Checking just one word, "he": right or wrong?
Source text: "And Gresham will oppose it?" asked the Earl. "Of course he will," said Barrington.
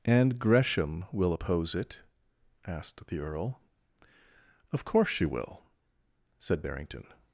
wrong